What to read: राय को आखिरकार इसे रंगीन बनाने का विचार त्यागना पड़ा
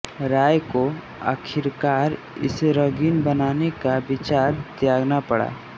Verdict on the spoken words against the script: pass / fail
pass